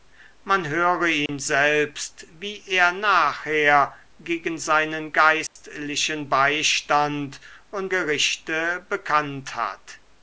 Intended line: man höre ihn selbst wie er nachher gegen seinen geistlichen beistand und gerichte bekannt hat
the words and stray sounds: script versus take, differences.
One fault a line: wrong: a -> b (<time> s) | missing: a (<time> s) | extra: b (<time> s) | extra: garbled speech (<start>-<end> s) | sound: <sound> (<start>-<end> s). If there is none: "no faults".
sound: dropout (1.3-1.3 s)
sound: dropout (5.5-5.6 s)